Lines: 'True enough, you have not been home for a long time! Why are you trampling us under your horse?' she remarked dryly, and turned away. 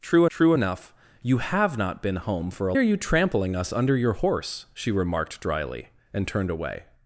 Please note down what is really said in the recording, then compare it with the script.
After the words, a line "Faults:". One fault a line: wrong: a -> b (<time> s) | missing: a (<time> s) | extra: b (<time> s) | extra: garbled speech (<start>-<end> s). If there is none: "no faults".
'True true enough, you have not been home for a are you trampling us under your horse?' she remarked dryly, and turned away.
Faults:
extra: true (0.3 s)
missing: long time Why (2.7 s)